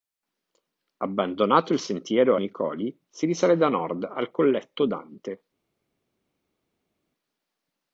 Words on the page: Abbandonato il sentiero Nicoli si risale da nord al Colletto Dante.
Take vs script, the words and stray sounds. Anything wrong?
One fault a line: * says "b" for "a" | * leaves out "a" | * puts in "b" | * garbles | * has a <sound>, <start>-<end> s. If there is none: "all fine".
all fine